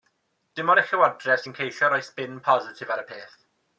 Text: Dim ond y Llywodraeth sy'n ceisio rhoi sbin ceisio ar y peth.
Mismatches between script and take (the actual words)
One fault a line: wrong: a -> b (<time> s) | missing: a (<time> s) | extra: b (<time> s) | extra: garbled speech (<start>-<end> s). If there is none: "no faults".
wrong: ceisio -> positif (2.5 s)